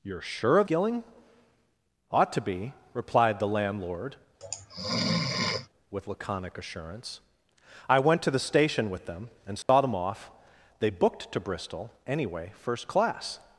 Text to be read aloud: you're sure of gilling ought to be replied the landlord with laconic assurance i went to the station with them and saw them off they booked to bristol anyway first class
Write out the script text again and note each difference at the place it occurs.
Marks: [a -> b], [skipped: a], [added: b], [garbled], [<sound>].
you're sure of gilling ought to be replied the landlord [sneeze] with laconic assurance i went to the station with them and saw [dropout] them off they booked to bristol anyway first class